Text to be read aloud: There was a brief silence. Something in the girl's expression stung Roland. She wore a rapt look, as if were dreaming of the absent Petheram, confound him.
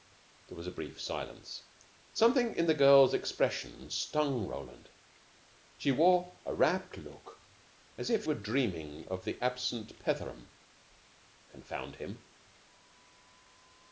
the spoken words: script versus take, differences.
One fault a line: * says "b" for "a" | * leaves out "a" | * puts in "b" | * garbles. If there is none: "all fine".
all fine